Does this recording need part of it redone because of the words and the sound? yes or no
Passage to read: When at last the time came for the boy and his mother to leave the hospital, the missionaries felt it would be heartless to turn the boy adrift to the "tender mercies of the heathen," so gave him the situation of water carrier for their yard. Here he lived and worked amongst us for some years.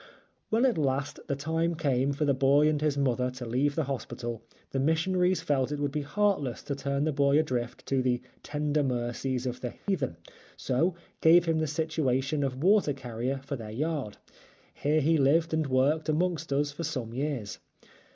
yes